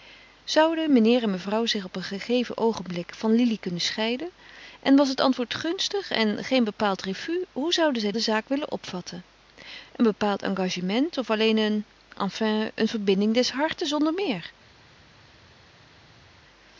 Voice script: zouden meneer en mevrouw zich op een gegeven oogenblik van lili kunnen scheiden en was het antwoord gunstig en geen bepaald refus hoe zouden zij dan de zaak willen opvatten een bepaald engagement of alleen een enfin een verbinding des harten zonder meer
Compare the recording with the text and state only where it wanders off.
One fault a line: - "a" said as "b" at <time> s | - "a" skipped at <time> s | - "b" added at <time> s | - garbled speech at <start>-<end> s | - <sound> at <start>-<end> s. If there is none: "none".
- "dan" skipped at 8.1 s